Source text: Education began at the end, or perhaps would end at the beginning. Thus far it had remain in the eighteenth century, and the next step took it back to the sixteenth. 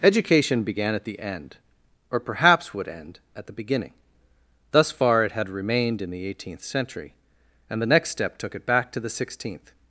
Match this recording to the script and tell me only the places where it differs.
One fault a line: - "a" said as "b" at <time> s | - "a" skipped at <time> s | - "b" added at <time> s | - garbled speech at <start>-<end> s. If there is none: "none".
- "remain" said as "remained" at 5.5 s